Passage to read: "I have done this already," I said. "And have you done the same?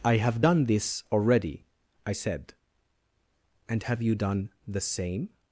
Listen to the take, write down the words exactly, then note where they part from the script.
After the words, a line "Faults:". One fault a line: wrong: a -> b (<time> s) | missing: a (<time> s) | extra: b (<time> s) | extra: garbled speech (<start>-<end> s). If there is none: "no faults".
"I have done this already," I said. "And have you done the same?
Faults:
no faults